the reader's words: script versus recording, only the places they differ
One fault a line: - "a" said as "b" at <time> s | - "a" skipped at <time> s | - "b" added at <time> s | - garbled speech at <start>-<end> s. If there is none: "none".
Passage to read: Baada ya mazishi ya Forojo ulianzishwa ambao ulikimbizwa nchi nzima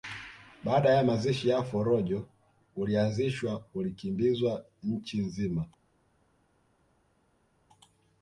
- "ambao" skipped at 3.6 s